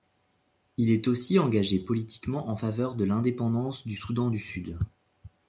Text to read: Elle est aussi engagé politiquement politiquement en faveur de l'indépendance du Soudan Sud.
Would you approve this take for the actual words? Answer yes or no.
no